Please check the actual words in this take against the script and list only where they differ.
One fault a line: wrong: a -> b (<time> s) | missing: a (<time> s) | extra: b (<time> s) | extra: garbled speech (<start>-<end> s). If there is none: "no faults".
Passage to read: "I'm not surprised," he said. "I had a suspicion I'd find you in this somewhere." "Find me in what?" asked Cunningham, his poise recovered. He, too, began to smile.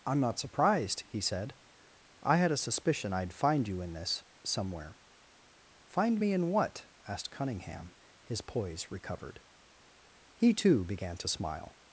no faults